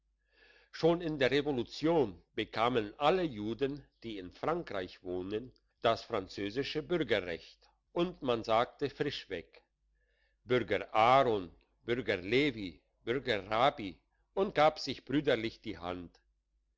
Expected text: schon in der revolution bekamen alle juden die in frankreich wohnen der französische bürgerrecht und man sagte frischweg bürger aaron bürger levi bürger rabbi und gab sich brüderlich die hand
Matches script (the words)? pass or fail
fail